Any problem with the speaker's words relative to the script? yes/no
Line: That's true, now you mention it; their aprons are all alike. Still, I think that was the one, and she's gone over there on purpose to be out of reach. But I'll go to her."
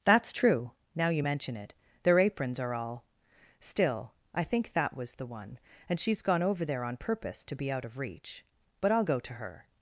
yes